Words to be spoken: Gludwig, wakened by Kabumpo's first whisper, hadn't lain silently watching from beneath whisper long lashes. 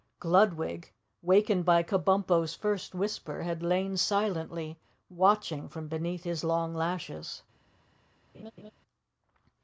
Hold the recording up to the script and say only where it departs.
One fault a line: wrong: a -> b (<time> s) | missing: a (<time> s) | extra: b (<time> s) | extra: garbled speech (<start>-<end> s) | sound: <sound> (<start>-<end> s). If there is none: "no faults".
wrong: hadn't -> had (3.4 s)
wrong: whisper -> his (6.2 s)
sound: laugh (8.3-8.7 s)